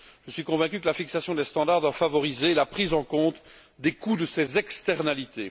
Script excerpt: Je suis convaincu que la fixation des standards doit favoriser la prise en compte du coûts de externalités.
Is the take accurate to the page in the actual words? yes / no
no